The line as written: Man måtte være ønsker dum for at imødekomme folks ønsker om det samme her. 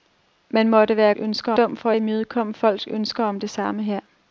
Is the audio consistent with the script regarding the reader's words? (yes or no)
yes